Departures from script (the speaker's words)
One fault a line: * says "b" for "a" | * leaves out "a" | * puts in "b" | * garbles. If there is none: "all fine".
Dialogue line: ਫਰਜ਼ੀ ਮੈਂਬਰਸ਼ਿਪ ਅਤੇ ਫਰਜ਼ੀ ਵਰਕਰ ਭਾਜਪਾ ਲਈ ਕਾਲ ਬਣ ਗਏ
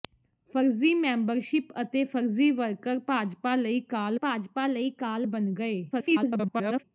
* puts in "ਭਾਜਪਾ ਲਈ ਕਾਲ"
* garbles